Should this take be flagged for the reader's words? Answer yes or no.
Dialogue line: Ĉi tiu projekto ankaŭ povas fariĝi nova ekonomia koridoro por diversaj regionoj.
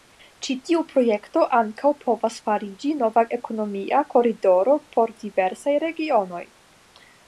no